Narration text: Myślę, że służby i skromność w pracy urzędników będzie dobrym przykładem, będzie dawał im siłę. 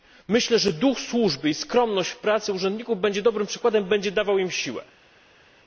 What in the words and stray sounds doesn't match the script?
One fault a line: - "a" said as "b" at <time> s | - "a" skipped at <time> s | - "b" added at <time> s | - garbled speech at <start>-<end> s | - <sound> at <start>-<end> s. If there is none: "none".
- "duch" added at 0.7 s